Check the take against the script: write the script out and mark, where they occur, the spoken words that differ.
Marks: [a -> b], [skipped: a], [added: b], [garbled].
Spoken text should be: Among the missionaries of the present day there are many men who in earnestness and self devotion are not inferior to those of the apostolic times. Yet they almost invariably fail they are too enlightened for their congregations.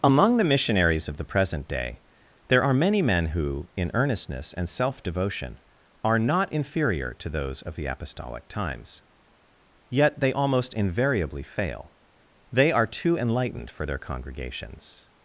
Among the missionaries of the present day there are many men who in earnestness and self devotion are not inferior to those of the apostolic times. Yet they almost invariably fail they are too enlightened for their congregations.